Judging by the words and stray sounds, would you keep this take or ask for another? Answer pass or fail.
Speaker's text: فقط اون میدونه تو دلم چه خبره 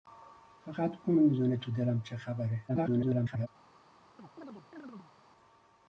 fail